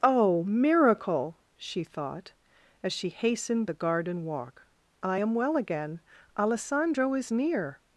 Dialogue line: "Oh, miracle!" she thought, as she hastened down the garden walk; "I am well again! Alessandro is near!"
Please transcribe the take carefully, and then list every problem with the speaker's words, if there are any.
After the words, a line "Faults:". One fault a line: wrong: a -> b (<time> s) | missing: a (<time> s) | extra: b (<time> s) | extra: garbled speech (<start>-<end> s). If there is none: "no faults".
"Oh, miracle!" she thought, as she hastened the garden walk; "I am well again! Alessandro is near!"
Faults:
missing: down (3.7 s)